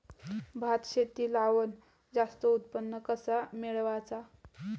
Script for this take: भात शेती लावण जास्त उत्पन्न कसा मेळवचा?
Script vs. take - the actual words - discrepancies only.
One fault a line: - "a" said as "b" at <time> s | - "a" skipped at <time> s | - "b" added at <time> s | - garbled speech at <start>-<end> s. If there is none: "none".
none